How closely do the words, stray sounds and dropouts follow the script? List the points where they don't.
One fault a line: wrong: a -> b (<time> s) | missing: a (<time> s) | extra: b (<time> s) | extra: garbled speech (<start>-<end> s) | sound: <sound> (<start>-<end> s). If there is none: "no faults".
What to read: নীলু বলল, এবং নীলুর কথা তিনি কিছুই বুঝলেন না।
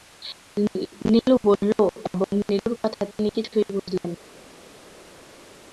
no faults